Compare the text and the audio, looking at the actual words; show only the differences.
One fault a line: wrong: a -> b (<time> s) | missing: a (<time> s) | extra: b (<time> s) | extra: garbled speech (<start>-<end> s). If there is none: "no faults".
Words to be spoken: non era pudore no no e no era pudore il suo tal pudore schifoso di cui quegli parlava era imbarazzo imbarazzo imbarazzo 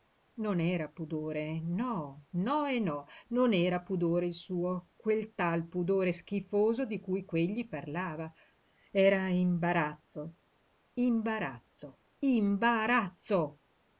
extra: non (3.3 s)
extra: quel (5.0 s)